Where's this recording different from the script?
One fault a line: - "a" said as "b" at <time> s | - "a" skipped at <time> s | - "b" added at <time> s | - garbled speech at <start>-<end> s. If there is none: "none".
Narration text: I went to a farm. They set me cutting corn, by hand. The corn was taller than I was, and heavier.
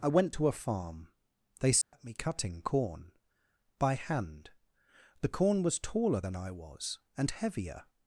none